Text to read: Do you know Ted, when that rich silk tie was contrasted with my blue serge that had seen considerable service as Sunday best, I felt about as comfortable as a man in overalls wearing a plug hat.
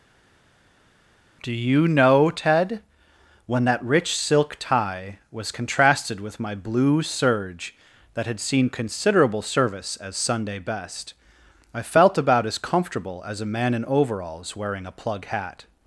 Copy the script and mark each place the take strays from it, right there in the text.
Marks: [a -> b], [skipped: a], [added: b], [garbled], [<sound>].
Do you know Ted, when that rich silk tie was contrasted with my blue serge that had seen considerable service as Sunday best, I felt about as comfortable as a man in overalls wearing a plug hat.